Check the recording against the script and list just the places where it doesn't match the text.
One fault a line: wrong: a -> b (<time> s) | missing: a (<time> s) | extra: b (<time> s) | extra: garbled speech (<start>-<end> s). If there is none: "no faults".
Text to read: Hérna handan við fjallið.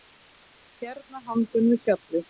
no faults